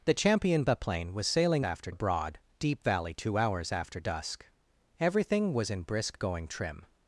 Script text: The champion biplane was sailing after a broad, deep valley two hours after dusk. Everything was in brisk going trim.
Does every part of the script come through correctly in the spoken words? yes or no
yes